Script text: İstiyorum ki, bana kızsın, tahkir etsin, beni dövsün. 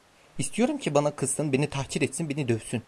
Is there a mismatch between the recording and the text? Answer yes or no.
yes